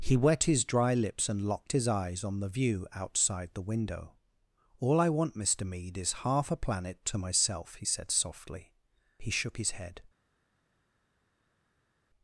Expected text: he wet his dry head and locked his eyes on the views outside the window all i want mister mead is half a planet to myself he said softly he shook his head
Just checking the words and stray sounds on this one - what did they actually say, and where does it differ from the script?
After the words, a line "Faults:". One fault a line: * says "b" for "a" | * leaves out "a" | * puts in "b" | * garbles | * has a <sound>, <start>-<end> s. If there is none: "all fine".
he wet his dry lips and locked his eyes on the view outside the window all i want mister mead is half a planet to myself he said softly he shook his head
Faults:
* says "lips" for "head"
* says "view" for "views"